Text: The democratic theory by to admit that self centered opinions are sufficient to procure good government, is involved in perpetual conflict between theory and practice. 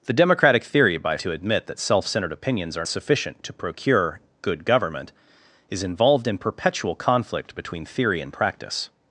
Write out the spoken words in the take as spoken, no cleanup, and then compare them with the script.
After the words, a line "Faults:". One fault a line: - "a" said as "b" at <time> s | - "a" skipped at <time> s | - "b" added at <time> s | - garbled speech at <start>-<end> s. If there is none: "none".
The democratic theory by to admit that self centered opinions are sufficient to procure good government, is involved in perpetual conflict between theory and practice.
Faults:
none